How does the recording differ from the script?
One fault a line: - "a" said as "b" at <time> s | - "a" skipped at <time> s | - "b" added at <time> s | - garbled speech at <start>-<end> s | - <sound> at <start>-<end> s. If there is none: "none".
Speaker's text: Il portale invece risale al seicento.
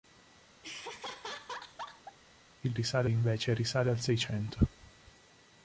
- laugh at 0.6-2.2 s
- "portale" said as "risale" at 2.7 s